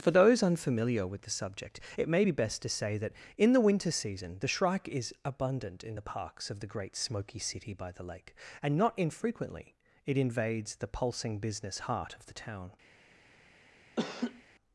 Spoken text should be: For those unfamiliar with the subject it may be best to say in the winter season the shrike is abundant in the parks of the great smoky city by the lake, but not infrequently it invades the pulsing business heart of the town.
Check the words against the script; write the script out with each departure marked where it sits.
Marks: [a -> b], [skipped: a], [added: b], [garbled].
For those unfamiliar with the subject it may be best to say [added: that] in the winter season the shrike is abundant in the parks of the great smoky city by the lake, [but -> and] not infrequently it invades the pulsing business heart of the town.